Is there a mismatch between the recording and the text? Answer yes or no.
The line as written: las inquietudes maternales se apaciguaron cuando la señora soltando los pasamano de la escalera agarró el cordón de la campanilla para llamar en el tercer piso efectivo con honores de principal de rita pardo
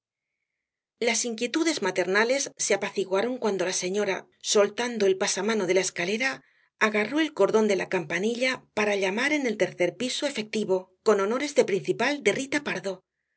yes